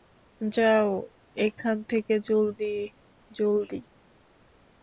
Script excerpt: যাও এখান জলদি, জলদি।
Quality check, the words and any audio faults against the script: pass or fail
fail